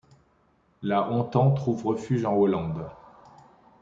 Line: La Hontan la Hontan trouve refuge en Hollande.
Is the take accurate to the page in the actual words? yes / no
no